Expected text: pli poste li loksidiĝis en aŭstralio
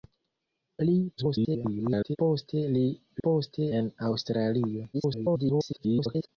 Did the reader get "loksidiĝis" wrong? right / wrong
wrong